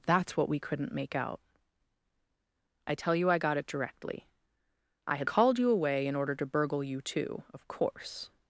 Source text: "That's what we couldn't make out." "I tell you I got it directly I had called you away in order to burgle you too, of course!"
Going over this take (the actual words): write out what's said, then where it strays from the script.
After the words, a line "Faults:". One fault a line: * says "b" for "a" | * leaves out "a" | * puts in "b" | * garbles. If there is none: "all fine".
"That's what we couldn't make out." "I tell you I got it directly I had called you away in order to burgle you too, of course!"
Faults:
all fine